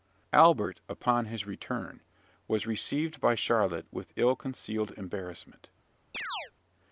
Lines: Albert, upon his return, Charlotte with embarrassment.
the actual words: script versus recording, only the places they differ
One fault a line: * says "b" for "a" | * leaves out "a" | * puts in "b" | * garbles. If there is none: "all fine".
* puts in "was received by"
* puts in "ill concealed"